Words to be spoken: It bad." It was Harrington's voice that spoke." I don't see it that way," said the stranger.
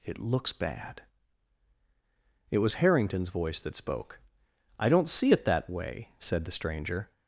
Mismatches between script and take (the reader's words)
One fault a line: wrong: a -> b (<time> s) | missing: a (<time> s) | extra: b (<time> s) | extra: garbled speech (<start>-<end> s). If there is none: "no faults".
extra: looks (0.2 s)